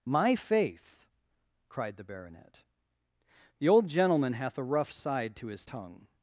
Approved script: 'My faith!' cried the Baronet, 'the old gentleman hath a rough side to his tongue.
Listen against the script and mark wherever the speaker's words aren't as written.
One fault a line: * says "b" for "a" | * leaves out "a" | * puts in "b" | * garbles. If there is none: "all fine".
all fine